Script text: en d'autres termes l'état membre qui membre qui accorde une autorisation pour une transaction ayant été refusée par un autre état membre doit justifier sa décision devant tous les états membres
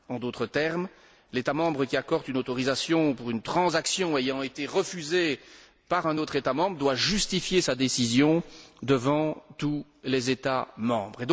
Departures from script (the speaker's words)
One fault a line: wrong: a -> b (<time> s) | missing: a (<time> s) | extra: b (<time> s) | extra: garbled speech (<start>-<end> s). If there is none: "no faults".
missing: membre qui (2.0 s)